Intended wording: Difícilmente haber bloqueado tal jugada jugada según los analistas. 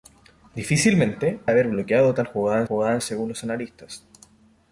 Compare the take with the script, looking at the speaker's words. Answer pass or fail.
pass